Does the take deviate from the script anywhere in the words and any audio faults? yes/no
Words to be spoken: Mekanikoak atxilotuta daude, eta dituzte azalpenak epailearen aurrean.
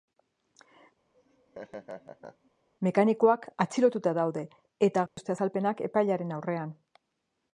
yes